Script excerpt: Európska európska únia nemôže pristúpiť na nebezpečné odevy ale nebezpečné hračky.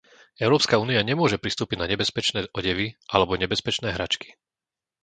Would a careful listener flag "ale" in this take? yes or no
yes